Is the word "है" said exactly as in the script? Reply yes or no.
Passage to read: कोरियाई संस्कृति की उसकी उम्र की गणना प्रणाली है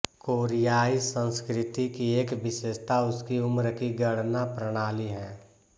yes